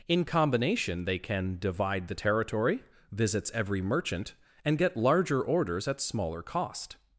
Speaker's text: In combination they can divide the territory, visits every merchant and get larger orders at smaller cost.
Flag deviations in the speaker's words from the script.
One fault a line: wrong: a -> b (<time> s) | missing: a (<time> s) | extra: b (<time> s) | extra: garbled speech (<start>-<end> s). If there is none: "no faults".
no faults